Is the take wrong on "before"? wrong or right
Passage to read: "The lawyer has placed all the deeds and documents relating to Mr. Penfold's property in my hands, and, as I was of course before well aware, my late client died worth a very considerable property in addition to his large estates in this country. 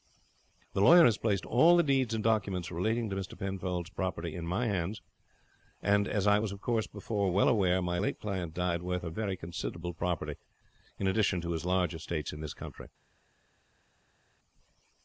right